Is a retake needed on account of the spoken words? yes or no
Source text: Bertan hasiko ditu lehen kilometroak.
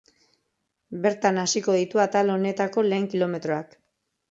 yes